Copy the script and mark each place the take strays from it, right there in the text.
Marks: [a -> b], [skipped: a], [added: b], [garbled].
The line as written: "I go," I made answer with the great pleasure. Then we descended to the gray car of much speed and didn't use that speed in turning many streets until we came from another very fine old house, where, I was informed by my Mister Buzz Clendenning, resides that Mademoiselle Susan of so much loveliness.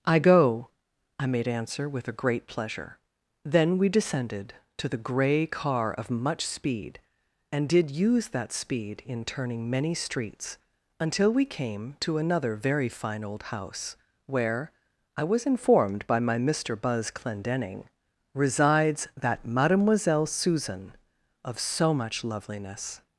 "I go," I made answer with [the -> a] great pleasure. Then we descended to the gray car of much speed and [didn't -> did] use that speed in turning many streets until we came [from -> to] another very fine old house, where, I was informed by my Mister Buzz Clendenning, resides that Mademoiselle Susan of so much loveliness.